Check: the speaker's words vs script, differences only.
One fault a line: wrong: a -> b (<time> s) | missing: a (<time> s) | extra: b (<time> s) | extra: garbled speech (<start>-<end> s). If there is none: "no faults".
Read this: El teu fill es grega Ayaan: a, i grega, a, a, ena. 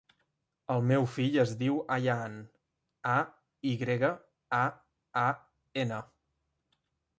wrong: teu -> meu (0.9 s)
wrong: grega -> diu (1.6 s)